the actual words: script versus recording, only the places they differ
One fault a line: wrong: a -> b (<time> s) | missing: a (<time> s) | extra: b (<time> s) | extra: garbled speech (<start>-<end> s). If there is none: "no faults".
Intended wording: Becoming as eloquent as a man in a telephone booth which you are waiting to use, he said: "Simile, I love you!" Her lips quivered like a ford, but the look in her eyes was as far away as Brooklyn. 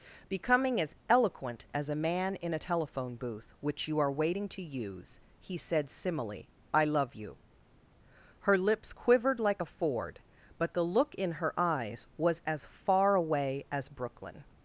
no faults